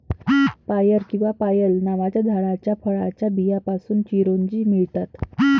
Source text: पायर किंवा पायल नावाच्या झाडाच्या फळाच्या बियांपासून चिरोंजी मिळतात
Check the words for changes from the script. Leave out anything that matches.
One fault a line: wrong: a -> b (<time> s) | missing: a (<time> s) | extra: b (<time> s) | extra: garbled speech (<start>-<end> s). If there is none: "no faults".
no faults